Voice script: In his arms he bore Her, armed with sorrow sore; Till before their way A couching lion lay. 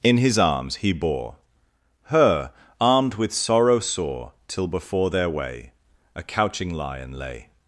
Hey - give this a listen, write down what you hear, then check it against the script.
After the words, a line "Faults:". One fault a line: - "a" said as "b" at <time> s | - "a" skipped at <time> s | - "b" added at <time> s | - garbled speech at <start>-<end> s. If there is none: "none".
In his arms he bore Her, armed with sorrow sore; Till before their way A couching lion lay.
Faults:
none